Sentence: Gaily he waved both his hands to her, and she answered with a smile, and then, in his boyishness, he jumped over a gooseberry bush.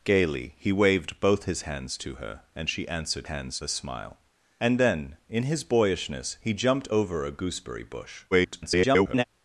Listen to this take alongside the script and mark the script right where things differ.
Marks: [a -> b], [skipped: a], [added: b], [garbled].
Gaily he waved both his hands to her, and she answered [with -> hands] a smile, and then, in his boyishness, he jumped over a gooseberry bush. [garbled]